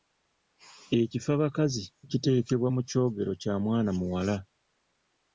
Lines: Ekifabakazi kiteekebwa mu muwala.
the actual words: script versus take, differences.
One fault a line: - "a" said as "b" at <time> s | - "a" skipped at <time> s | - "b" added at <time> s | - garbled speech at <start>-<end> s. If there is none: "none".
- "kyogero kya mwana" added at 2.9 s